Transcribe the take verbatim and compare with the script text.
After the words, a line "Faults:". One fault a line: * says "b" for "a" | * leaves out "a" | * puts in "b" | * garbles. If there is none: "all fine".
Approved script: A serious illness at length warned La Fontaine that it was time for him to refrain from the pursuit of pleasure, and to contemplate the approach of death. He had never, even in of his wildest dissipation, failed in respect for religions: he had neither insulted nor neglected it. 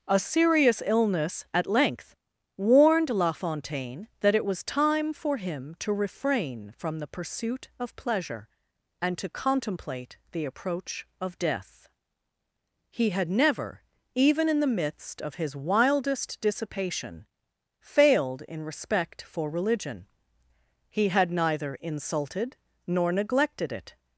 A serious illness at length warned La Fontaine that it was time for him to refrain from the pursuit of pleasure, and to contemplate the approach of death. He had never, even in the midst of his wildest dissipation, failed in respect for religion: he had neither insulted nor neglected it.
Faults:
* puts in "the midst"
* says "religion" for "religions"